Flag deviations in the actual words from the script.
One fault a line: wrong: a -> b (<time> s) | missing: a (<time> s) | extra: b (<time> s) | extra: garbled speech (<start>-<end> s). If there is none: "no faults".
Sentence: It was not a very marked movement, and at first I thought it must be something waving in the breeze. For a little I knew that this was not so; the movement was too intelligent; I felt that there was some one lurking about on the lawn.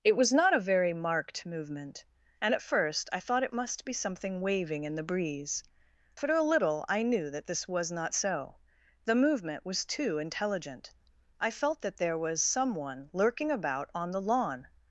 no faults